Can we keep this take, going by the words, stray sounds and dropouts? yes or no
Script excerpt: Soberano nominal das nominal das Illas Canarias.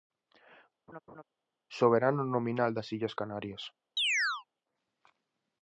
no